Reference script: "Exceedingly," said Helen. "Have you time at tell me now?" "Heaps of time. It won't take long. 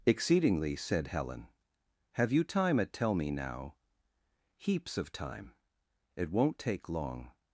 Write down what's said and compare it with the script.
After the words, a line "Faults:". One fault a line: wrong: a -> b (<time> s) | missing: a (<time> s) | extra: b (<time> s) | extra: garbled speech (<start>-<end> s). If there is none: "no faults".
"Exceedingly," said Helen. "Have you time at tell me now?" "Heaps of time. It won't take long.
Faults:
no faults